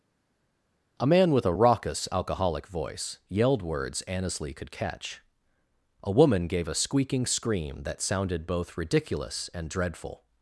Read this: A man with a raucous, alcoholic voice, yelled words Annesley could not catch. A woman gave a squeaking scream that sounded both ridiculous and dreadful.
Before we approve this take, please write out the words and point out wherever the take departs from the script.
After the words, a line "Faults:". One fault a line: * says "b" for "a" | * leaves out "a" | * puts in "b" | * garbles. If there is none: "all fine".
A man with a raucous, alcoholic voice, yelled words Annesley could catch. A woman gave a squeaking scream that sounded both ridiculous and dreadful.
Faults:
* leaves out "not"